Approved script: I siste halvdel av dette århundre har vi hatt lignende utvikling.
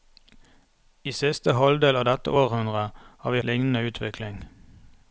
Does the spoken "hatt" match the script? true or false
false